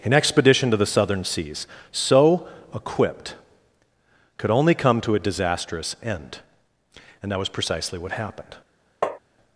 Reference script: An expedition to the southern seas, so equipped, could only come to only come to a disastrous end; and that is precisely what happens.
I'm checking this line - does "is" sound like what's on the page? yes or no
no